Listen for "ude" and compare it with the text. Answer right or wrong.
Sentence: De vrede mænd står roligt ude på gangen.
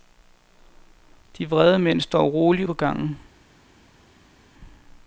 wrong